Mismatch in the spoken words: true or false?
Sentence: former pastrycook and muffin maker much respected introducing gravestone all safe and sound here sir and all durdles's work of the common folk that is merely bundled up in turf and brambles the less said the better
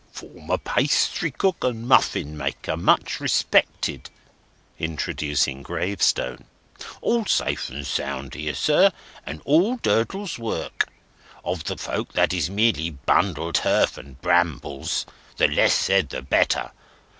true